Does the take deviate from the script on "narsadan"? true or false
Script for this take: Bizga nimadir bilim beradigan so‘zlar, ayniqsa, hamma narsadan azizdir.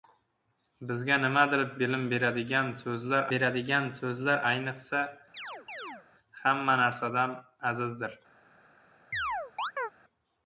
false